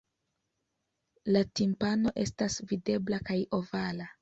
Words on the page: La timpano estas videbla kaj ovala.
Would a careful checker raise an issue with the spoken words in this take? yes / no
no